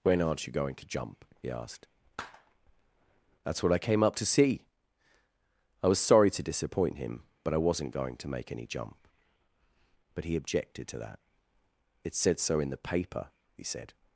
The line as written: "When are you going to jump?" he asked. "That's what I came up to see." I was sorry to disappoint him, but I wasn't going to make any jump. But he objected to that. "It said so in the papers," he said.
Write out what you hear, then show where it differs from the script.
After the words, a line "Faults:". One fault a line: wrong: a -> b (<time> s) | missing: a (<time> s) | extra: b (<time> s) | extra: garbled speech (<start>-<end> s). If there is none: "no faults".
"When aren't you going to jump?" he asked. "That's what I came up to see." I was sorry to disappoint him, but I wasn't going to make any jump. But he objected to that. "It said so in the paper," he said.
Faults:
wrong: are -> aren't (0.2 s)
wrong: papers -> paper (12.8 s)